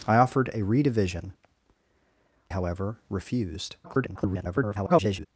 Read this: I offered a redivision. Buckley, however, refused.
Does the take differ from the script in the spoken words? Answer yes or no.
yes